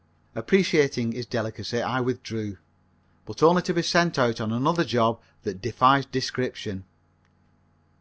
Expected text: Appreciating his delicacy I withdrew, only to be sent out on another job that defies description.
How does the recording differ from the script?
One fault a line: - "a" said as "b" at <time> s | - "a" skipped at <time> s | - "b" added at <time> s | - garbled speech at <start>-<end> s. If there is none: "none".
- "but" added at 3.3 s